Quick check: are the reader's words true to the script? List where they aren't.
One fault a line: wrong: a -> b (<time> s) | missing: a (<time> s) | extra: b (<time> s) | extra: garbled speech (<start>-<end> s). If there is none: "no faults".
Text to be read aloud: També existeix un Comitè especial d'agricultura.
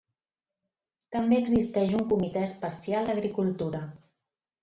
no faults